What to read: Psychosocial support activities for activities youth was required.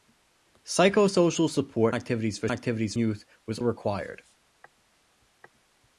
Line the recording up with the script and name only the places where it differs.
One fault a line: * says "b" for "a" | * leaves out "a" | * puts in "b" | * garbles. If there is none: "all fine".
all fine